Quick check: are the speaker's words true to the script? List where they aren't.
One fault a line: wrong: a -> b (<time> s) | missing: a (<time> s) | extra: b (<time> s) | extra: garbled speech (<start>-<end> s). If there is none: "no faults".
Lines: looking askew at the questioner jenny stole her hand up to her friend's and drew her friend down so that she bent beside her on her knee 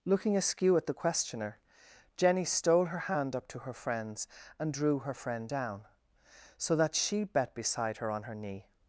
wrong: bent -> bet (7.2 s)